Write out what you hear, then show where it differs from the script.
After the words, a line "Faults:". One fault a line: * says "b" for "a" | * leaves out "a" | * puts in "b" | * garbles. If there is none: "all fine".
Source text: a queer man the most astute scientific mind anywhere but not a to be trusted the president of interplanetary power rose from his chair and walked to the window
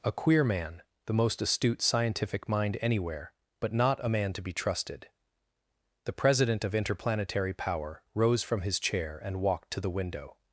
a queer man the most astute scientific mind anywhere but not a man to be trusted the president of interplanetary power rose from his chair and walked to the window
Faults:
* puts in "man"